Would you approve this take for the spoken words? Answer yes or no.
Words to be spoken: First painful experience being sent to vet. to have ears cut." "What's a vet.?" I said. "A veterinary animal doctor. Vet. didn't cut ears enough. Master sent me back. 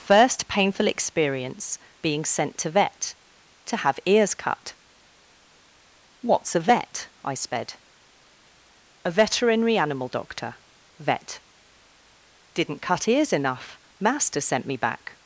no